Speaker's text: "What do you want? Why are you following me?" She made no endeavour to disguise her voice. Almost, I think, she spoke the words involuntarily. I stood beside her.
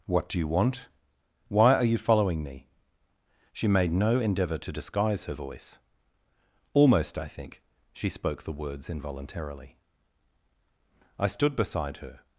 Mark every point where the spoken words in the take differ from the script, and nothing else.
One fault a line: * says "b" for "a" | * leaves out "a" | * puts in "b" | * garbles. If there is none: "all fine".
all fine